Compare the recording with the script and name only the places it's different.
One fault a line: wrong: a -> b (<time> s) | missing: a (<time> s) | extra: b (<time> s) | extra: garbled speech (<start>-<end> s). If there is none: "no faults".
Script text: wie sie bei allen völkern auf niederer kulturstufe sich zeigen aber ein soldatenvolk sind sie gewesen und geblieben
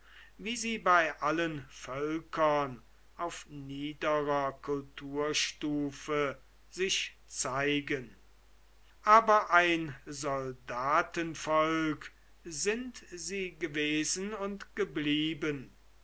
no faults